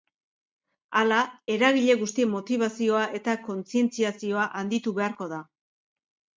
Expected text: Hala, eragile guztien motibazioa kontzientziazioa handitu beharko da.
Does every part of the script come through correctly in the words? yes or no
no